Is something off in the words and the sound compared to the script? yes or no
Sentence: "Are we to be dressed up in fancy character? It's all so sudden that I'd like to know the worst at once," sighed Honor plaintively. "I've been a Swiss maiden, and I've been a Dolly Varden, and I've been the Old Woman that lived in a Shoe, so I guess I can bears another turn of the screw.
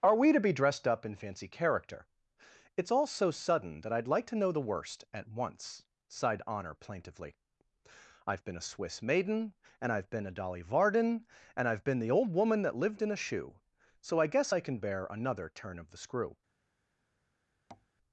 yes